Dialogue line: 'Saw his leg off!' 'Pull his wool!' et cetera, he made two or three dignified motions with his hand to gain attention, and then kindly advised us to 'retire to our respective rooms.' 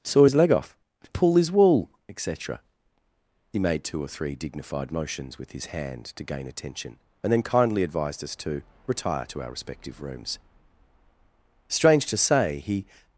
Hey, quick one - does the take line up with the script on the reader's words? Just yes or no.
no